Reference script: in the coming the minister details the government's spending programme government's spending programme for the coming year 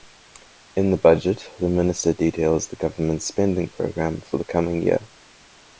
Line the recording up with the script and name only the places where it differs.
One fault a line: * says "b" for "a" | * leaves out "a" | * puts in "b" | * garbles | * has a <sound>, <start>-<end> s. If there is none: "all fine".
* says "budget" for "coming"
* leaves out "government's spending programme"